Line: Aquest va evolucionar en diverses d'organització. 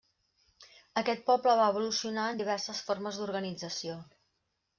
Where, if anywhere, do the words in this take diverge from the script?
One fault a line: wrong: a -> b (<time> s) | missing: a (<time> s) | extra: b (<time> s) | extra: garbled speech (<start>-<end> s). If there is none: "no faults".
extra: poble (1.3 s)
extra: formes (2.9 s)